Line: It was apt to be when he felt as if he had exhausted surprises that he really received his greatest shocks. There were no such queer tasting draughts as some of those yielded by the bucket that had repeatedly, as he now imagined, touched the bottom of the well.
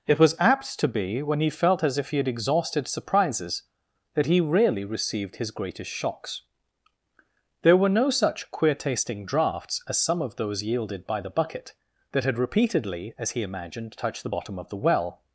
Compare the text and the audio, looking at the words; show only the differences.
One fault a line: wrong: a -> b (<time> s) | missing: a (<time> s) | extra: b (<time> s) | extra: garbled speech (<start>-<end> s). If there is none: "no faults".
missing: now (13.4 s)